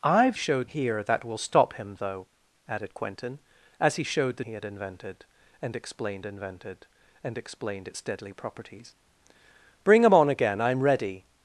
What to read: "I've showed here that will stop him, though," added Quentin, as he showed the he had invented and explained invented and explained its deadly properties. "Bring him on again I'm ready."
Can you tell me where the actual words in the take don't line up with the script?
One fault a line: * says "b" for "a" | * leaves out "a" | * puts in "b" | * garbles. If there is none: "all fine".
all fine